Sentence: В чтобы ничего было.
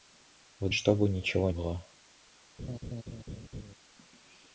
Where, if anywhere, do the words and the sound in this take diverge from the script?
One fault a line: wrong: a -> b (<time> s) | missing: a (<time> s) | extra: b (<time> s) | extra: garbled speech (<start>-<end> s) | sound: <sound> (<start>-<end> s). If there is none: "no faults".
sound: laugh (2.6-3.7 s)